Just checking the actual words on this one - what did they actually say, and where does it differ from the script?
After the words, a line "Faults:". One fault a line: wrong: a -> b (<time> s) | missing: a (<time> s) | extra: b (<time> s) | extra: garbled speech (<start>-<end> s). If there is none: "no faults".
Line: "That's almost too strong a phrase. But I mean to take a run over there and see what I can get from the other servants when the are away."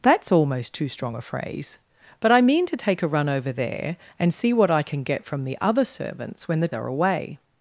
"That's almost too strong a phrase. But I mean to take a run over there and see what I can get from the other servants when the are away."
Faults:
no faults